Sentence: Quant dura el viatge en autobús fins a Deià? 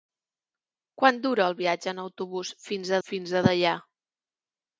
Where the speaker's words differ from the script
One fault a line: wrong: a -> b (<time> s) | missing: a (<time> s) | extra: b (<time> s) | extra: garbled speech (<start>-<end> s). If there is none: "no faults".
extra: fins (3.1 s)